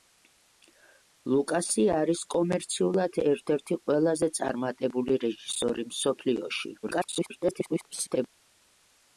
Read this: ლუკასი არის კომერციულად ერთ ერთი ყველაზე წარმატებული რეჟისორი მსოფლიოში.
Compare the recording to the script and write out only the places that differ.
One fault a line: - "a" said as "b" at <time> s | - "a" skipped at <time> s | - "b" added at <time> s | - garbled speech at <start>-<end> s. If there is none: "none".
- garbled speech at 6.8-8.3 s